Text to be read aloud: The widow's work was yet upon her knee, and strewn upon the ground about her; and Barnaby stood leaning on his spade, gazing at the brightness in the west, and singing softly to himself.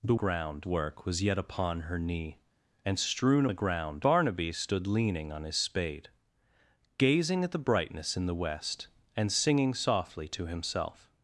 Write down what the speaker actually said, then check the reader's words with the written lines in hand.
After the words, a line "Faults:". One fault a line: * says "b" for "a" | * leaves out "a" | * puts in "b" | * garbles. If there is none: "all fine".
The ground work was yet upon her knee, and strewn the ground Barnaby stood leaning on his spade, gazing at the brightness in the west, and singing softly to himself.
Faults:
* says "ground" for "widow's"
* leaves out "upon"
* leaves out "about her and"